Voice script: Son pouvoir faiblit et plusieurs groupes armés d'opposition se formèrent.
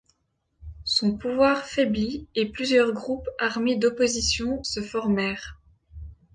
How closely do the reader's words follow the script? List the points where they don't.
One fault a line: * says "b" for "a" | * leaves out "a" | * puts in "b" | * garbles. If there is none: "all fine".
all fine